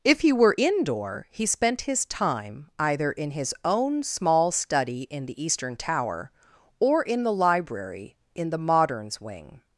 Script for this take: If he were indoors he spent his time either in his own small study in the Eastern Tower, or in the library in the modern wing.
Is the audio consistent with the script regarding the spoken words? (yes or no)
no